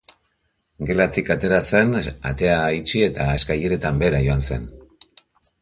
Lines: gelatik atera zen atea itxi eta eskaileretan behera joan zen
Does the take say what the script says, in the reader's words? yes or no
yes